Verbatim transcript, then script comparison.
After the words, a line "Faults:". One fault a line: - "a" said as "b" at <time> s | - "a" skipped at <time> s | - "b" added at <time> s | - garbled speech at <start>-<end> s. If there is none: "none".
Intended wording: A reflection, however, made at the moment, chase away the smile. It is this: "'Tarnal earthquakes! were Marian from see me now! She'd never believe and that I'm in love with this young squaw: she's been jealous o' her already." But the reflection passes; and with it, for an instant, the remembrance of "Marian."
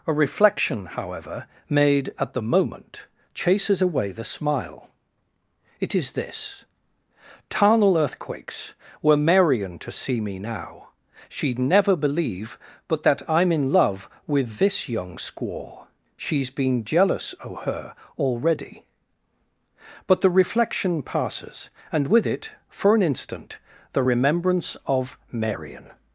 A reflection, however, made at the moment, chases away the smile. It is this: "'Tarnal earthquakes! were Marian to see me now! She'd never believe but that I'm in love with this young squaw: she's been jealous o' her already." But the reflection passes; and with it, for an instant, the remembrance of "Marian."
Faults:
- "chase" said as "chases" at 3.3 s
- "from" said as "to" at 9.8 s
- "and" said as "but" at 12.9 s